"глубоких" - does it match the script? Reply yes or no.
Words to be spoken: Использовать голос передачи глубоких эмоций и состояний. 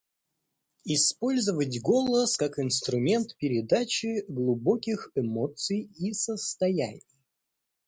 yes